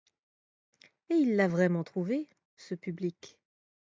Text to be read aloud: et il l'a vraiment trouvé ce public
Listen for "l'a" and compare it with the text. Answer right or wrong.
right